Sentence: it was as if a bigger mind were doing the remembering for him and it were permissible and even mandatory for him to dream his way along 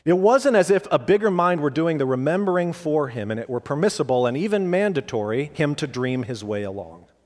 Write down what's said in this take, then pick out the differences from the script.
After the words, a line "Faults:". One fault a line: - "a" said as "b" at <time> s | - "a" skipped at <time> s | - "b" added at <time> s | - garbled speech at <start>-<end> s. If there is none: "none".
it wasn't as if a bigger mind were doing the remembering for him and it were permissible and even mandatory him to dream his way along
Faults:
- "was" said as "wasn't" at 0.2 s
- "for" skipped at 5.5 s